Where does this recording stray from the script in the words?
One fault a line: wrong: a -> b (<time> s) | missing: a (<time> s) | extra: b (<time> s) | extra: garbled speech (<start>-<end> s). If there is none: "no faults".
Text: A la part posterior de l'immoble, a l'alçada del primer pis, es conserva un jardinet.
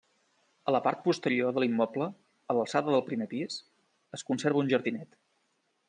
no faults